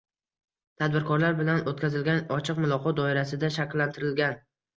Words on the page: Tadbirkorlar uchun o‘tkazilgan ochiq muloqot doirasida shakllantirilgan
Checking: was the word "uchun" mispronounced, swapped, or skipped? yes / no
yes